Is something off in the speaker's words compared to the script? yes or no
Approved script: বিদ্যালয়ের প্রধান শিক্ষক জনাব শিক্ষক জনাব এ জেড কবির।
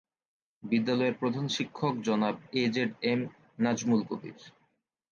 yes